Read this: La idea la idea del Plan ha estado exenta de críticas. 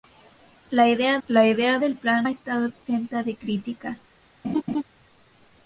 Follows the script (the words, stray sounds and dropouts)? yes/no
no